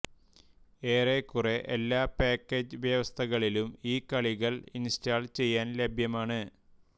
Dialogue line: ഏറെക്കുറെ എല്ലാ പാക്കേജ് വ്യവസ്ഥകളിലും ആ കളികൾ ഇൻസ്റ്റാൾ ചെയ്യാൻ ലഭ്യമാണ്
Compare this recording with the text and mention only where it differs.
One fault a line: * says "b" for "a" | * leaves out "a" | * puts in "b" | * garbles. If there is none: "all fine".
* says "ഈ" for "ആ"